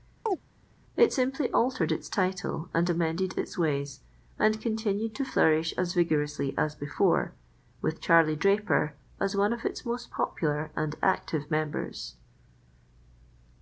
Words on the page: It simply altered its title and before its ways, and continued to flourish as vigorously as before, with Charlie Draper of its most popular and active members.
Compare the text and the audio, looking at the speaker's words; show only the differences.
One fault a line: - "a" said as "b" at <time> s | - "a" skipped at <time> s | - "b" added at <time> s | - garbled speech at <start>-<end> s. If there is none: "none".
- "before" said as "amended" at 2.9 s
- "as one" added at 9.2 s